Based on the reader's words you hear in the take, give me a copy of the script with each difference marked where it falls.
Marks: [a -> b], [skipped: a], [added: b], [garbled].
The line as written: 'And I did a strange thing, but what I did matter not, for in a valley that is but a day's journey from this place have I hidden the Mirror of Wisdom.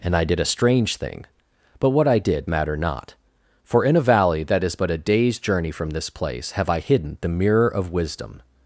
'And I did a strange thing, but what I did matter not, for in a valley that is but a day's journey from this place have I hidden the Mirror of Wisdom.